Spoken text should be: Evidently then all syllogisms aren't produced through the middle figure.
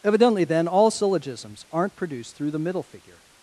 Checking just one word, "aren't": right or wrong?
right